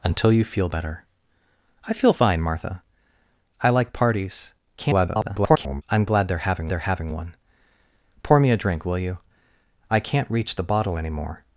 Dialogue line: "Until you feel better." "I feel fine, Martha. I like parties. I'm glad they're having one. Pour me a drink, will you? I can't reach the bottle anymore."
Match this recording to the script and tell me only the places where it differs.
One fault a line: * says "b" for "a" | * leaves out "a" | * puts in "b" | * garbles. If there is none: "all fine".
* garbles
* puts in "they're having"